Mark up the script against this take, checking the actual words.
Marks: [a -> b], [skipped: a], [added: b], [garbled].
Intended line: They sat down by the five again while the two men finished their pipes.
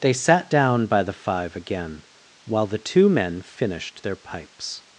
They sat down by the five again while the two men finished their pipes.